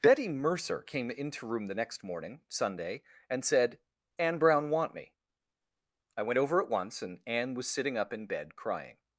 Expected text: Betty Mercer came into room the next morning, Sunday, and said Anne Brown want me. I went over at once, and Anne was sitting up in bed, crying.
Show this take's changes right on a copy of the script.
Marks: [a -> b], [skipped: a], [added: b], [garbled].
Betty Mercer came into room the next morning, Sunday, and said Anne Brown want me. I went over at once, and Anne was sitting up in bed, crying.